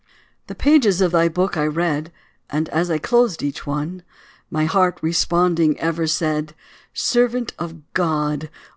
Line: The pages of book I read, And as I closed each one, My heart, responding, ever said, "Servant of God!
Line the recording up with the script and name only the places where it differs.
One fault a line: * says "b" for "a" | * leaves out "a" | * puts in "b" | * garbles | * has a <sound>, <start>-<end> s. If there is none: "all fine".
* puts in "thy"